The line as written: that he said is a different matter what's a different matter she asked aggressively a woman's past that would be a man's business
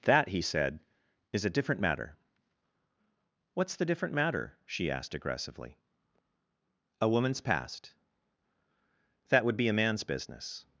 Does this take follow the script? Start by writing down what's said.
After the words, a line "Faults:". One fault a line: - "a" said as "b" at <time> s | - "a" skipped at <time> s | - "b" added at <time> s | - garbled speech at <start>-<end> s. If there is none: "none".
that he said is a different matter what's the different matter she asked aggressively a woman's past that would be a man's business
Faults:
- "a" said as "the" at 3.8 s